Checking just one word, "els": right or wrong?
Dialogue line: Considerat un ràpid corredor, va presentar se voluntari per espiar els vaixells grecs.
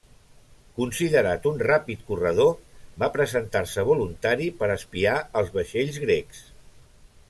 right